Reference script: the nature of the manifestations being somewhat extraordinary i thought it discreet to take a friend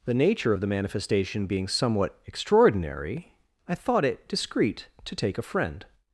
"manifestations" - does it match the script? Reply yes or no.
no